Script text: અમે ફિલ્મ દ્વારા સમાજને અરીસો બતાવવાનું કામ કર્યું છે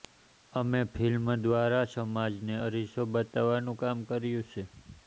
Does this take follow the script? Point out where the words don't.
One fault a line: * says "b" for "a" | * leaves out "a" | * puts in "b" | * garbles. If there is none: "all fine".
all fine